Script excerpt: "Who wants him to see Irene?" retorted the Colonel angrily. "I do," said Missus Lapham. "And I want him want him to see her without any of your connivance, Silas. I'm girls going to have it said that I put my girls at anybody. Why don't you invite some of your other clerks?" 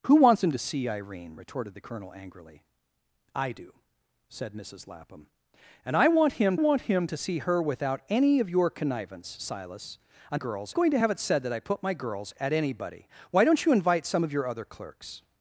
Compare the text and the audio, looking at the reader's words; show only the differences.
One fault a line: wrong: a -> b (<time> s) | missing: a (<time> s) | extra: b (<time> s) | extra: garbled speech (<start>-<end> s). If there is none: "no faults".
no faults